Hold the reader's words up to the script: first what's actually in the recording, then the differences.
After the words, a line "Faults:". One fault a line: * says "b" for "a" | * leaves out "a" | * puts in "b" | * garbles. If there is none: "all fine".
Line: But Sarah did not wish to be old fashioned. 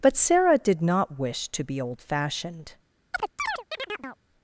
But Sarah did not wish to be old fashioned.
Faults:
all fine